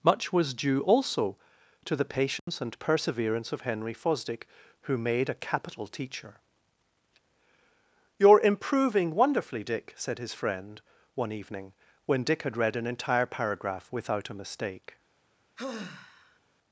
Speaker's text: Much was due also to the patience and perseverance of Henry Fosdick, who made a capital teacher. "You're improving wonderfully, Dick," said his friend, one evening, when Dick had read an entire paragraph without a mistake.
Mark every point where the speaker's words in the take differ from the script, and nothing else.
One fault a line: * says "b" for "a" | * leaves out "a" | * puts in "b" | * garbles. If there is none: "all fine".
all fine